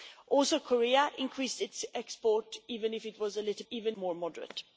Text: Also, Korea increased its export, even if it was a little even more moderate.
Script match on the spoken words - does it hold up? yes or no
yes